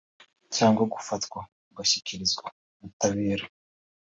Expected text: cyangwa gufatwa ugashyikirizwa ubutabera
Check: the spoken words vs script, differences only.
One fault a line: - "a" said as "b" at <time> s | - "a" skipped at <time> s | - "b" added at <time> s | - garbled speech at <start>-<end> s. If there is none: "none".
none